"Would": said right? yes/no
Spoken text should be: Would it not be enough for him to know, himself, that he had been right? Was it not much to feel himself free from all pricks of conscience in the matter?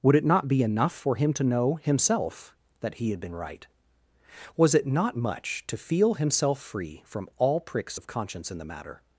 yes